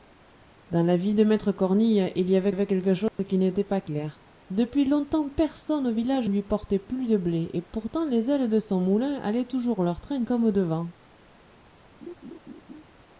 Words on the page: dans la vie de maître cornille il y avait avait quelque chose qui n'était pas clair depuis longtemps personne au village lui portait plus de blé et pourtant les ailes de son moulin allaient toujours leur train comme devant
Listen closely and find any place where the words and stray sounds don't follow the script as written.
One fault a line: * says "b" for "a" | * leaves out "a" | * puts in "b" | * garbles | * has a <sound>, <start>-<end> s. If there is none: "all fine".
* has a dropout, 3.1-3.2 s
* has a laugh, 12.0-12.8 s